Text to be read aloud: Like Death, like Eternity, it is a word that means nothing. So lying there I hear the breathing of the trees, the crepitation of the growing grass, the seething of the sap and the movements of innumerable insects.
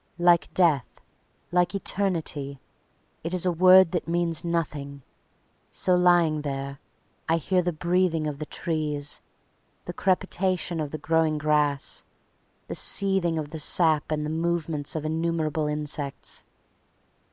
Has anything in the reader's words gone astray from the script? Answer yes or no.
no